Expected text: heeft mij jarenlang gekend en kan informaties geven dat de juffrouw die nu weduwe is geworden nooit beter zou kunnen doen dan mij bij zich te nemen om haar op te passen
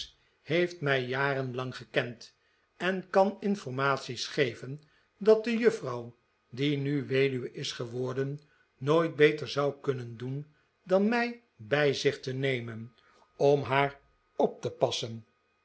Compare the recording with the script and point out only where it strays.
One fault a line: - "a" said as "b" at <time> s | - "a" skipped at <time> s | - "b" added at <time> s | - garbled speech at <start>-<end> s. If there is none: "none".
none